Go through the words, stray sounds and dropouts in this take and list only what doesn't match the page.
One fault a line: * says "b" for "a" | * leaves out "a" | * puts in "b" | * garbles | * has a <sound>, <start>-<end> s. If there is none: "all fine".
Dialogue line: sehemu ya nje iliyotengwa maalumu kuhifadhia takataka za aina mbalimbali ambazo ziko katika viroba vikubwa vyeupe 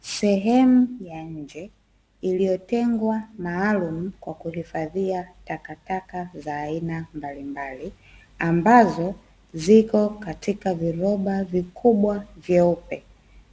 * puts in "kwa"